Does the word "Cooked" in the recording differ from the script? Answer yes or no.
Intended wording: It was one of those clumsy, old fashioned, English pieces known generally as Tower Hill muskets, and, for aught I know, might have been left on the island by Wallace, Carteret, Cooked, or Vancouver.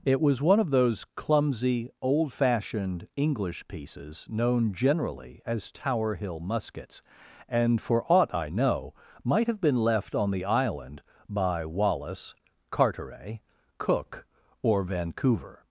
yes